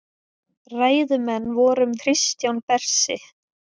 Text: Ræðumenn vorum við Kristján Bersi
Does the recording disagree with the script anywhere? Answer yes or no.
yes